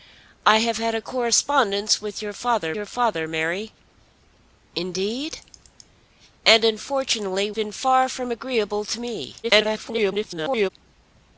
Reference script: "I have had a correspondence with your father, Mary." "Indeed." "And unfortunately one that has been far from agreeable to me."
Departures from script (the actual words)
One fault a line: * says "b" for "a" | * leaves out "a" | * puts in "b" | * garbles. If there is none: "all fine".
* puts in "your father"
* leaves out "one that has"
* garbles